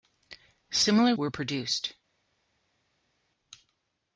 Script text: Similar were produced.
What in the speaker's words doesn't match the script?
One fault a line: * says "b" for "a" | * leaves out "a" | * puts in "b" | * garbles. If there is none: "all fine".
all fine